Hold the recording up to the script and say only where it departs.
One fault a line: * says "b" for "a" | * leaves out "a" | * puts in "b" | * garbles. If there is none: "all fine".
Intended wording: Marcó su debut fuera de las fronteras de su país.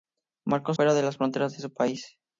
* leaves out "su debut"